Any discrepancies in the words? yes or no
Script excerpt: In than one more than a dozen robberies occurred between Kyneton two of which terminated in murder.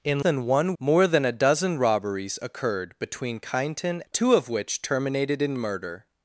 no